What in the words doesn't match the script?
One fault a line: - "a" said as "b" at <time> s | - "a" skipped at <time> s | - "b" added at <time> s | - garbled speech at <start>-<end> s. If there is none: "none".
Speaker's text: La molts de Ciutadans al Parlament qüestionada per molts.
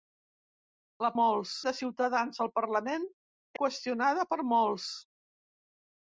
none